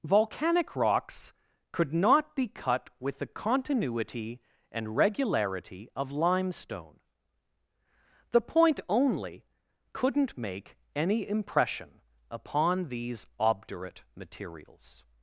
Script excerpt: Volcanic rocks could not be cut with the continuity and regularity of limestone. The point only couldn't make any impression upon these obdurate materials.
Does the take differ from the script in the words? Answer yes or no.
no